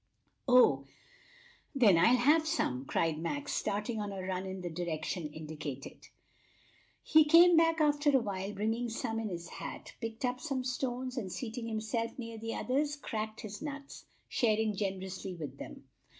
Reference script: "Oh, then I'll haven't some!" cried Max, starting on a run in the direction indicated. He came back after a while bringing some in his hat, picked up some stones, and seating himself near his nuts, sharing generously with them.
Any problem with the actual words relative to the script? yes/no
yes